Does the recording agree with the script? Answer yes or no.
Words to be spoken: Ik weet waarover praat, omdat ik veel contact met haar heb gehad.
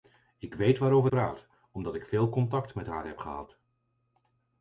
yes